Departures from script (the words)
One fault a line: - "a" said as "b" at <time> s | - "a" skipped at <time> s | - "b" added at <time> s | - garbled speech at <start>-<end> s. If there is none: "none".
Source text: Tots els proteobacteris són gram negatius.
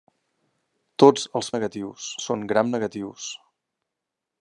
- "proteobacteris" said as "negatius" at 1.6 s